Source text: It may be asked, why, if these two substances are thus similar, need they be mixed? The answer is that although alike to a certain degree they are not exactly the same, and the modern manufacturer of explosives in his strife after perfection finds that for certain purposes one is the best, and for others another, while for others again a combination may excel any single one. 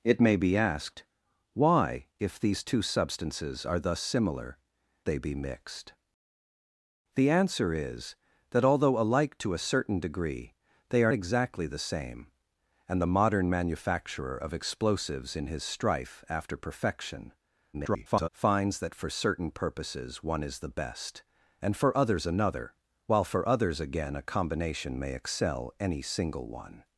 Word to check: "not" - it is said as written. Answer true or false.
false